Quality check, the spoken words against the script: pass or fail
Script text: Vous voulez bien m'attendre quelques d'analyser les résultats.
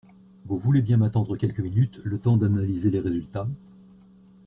fail